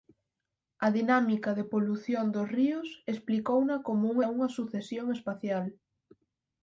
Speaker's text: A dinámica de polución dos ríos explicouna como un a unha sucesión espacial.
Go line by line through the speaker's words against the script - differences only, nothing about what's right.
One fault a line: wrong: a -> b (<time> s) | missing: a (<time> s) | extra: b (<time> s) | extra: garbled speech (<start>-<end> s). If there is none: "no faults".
no faults